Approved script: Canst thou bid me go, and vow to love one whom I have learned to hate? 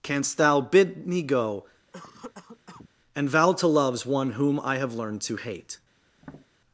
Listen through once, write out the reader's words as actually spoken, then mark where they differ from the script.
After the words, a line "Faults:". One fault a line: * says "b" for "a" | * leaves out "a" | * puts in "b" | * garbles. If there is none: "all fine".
Canst thou bid me go, and vow to loves one whom I have learned to hate?
Faults:
* says "loves" for "love"